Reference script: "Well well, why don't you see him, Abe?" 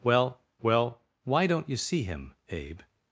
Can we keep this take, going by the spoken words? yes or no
yes